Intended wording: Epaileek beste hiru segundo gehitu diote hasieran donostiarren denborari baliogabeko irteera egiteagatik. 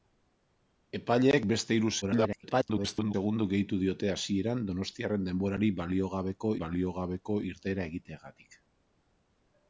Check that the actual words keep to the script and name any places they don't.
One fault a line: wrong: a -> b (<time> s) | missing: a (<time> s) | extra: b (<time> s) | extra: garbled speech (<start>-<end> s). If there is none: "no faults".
extra: garbled speech (2.0-3.1 s)
extra: baliogabeko (6.6 s)